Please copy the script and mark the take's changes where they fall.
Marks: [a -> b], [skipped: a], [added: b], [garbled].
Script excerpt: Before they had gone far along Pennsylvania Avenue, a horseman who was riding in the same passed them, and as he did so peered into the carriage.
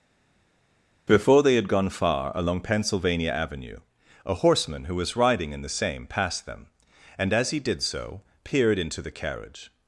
Before they had gone far along Pennsylvania Avenue, a horseman who was riding in the same passed them, and as he did so peered into the carriage.